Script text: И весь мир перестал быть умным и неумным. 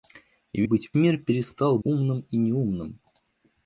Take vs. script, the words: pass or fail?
fail